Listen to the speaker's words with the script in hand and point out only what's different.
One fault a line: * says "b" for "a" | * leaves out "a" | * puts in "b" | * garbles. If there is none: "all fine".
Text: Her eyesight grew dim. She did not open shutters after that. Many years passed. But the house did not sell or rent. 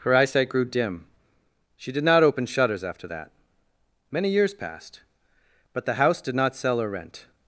all fine